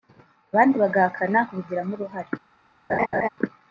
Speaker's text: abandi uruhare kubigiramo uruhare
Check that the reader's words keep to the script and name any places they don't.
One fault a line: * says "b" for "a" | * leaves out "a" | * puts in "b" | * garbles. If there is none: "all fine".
* says "bagahakana" for "uruhare"